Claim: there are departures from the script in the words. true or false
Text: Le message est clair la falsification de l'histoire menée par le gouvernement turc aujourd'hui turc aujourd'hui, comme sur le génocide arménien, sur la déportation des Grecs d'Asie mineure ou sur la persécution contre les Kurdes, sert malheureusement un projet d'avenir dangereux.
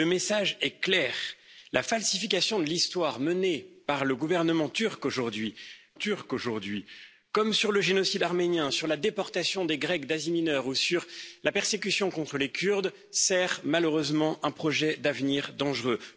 false